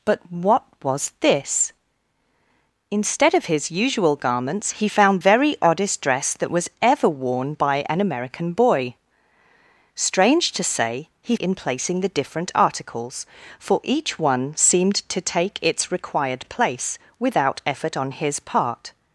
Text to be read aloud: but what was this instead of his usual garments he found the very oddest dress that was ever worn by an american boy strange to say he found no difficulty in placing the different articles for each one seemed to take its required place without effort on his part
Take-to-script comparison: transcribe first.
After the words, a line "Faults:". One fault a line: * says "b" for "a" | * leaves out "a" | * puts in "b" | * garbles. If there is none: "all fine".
but what was this instead of his usual garments he found very oddest dress that was ever worn by an american boy strange to say he in placing the different articles for each one seemed to take its required place without effort on his part
Faults:
* leaves out "the"
* leaves out "found no difficulty"